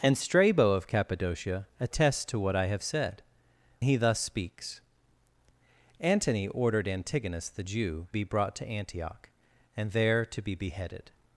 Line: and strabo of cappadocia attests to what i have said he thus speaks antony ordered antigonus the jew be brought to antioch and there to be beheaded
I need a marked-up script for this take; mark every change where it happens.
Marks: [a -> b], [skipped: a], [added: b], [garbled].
and strabo of cappadocia attests to what i have said he thus speaks antony ordered antigonus the jew be brought to antioch and there to be beheaded